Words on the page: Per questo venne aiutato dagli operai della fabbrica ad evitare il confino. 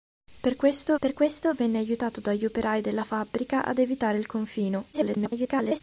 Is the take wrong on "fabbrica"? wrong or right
right